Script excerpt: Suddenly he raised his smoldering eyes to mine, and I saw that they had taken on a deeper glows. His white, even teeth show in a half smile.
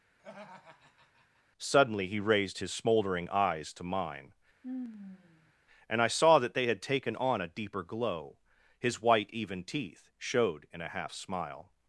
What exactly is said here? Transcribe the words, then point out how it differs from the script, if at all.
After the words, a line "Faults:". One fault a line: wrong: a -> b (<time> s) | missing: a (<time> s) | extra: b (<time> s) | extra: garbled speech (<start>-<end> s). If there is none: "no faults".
Suddenly he raised his smoldering eyes to mine, and I saw that they had taken on a deeper glow. His white, even teeth showed in a half smile.
Faults:
wrong: glows -> glow (7.8 s)
wrong: show -> showed (10.2 s)